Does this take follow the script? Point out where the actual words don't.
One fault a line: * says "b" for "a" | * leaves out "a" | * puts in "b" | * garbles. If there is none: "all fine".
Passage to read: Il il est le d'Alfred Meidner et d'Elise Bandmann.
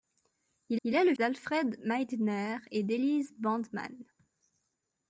all fine